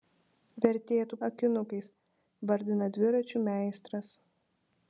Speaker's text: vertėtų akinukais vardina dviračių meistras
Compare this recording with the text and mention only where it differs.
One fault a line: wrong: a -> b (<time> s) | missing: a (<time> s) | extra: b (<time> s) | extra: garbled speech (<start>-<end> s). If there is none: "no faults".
no faults